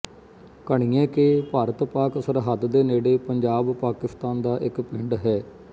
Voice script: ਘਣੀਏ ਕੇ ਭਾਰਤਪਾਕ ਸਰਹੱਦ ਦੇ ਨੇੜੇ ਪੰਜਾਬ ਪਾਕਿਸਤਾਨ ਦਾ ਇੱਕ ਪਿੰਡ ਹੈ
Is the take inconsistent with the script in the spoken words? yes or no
no